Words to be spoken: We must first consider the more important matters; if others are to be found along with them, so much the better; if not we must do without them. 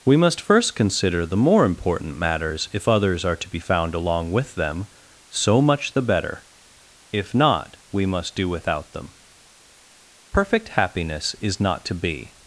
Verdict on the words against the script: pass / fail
fail